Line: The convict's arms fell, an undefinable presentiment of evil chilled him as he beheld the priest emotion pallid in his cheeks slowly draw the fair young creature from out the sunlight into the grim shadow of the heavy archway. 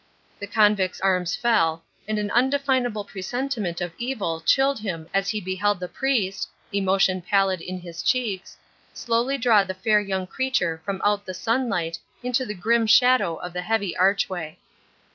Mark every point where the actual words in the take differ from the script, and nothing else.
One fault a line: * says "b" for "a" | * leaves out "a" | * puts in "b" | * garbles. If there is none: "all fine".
* puts in "and"